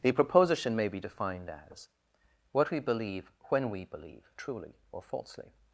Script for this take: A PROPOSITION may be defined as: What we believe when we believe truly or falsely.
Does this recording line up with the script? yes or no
no